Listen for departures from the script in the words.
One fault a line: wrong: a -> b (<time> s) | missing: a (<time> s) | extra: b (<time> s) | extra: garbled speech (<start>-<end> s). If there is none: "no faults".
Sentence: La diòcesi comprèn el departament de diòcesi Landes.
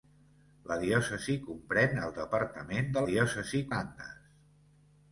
no faults